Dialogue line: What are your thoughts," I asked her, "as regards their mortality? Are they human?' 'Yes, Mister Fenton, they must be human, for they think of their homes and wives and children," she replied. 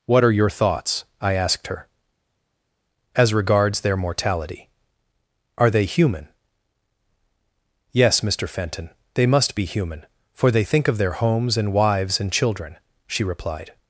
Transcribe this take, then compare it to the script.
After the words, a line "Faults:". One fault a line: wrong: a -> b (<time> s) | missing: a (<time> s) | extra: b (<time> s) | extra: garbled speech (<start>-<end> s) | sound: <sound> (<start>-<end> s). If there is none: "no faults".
What are your thoughts," I asked her, "as regards their mortality? Are they human?' 'Yes, Mister Fenton, they must be human, for they think of their homes and wives and children," she replied.
Faults:
no faults